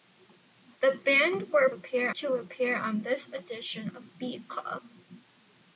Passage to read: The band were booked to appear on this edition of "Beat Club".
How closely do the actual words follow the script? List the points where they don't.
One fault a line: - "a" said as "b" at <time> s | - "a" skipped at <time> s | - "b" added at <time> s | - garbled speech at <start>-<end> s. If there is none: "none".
- "booked" said as "appear" at 1.7 s